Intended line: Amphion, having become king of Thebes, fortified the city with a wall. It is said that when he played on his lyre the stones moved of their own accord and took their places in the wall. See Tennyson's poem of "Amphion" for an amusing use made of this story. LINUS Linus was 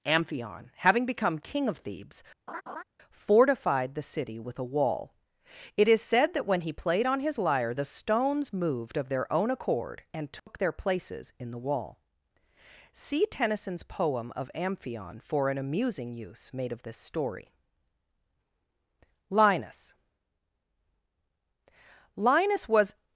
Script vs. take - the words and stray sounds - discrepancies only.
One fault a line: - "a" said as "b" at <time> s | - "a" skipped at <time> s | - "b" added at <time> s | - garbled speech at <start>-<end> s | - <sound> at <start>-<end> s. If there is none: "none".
- laugh at 2.5-2.8 s
- dropout at 10.4-10.5 s